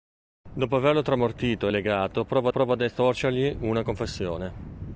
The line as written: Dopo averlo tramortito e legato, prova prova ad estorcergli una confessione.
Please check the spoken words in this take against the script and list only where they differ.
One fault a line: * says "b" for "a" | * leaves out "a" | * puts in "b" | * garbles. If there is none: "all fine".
all fine